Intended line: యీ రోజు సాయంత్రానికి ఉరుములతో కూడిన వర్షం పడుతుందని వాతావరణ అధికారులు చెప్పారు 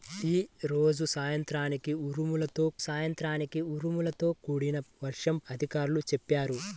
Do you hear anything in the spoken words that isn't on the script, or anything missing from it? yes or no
yes